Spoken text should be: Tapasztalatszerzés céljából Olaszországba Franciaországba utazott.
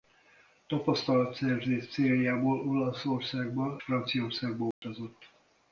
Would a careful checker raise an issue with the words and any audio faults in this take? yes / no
yes